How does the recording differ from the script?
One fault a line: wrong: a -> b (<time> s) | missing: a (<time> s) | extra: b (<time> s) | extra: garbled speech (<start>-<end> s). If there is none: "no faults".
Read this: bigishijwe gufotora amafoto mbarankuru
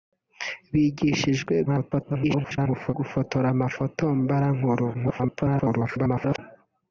extra: garbled speech (1.7-2.9 s)
extra: garbled speech (4.9-6.4 s)